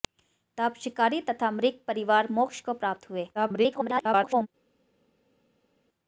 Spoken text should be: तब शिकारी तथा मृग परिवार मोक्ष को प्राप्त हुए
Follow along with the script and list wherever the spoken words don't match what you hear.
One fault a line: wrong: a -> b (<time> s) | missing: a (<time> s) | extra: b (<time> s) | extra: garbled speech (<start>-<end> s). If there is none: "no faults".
extra: garbled speech (3.3-4.5 s)